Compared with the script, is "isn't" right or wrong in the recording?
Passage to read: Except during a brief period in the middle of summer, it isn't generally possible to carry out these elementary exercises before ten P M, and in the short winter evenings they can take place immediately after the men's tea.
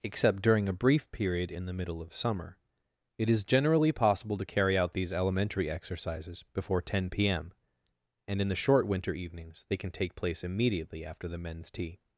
wrong